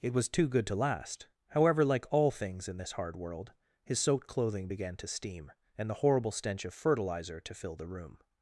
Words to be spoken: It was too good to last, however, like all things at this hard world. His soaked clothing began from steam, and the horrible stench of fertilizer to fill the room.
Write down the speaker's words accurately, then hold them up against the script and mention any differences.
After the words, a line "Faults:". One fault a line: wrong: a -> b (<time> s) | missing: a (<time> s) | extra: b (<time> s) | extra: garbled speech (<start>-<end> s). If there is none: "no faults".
It was too good to last, however, like all things in this hard world. His soaked clothing began to steam, and the horrible stench of fertilizer to fill the room.
Faults:
wrong: at -> in (2.7 s)
wrong: from -> to (5.0 s)